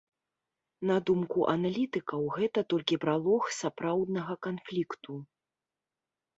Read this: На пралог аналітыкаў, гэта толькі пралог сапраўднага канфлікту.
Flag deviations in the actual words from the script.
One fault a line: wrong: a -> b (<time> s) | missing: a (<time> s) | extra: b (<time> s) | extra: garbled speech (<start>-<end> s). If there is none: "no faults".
wrong: пралог -> думку (1.1 s)